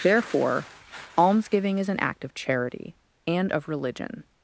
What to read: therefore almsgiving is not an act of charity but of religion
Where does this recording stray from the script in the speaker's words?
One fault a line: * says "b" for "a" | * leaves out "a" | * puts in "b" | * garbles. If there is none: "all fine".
* leaves out "not"
* says "and" for "but"